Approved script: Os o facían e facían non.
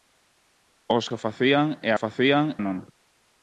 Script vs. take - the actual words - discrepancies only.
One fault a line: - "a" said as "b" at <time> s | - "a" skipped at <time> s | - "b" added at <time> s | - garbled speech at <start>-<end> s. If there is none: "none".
none